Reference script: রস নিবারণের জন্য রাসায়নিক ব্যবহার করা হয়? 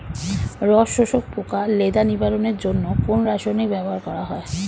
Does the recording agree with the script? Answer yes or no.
no